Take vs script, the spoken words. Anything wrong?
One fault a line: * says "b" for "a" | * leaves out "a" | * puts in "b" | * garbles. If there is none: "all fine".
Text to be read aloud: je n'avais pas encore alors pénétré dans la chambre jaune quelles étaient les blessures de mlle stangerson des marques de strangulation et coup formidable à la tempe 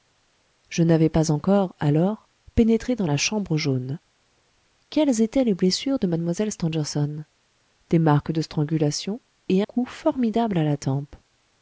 all fine